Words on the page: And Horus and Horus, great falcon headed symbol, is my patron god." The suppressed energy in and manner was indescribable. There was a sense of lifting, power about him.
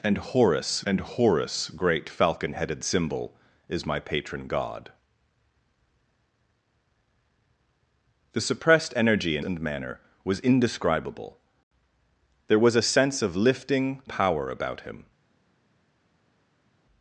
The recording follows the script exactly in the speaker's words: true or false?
true